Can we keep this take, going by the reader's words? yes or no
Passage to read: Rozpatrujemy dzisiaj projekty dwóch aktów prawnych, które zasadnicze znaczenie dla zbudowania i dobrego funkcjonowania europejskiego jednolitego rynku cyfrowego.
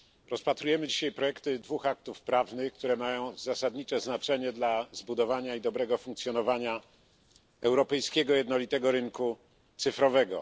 no